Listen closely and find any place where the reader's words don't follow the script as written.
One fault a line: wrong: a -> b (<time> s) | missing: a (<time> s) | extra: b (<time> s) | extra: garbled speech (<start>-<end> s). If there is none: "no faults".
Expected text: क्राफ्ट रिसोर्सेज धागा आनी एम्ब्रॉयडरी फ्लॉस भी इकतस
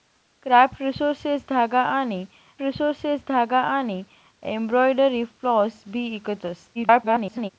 extra: रिसोर्सेज धागा आनी (2.6 s)
extra: garbled speech (6.7-7.5 s)